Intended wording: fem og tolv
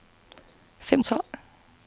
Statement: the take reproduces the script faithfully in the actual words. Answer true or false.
true